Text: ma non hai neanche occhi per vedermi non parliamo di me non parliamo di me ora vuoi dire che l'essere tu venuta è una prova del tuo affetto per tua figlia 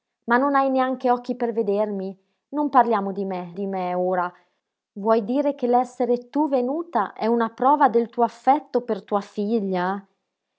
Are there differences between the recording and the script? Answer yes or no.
yes